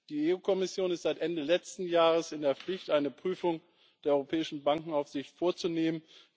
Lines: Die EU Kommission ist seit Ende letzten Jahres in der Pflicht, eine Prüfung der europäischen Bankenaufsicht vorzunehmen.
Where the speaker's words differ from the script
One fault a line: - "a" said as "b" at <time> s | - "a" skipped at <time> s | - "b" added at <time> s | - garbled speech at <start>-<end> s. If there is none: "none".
none